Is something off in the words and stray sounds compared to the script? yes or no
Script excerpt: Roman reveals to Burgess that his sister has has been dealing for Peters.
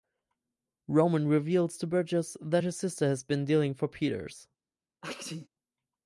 yes